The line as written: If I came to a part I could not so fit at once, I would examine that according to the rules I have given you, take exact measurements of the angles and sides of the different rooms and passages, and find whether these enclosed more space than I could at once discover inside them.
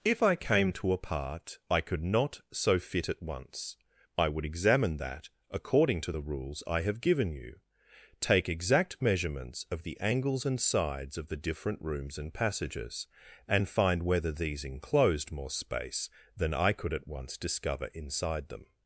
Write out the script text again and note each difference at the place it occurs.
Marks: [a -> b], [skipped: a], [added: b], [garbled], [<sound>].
If I came to a part I could not so fit at once, I would examine that according to the rules I have given you, take exact measurements of the angles and sides of the different rooms and passages, and find whether these enclosed more space than I could at once discover inside them.